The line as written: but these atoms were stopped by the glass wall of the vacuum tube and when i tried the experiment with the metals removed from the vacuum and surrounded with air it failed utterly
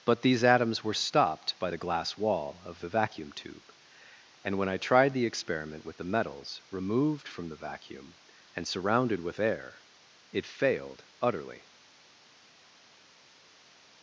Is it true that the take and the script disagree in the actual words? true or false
false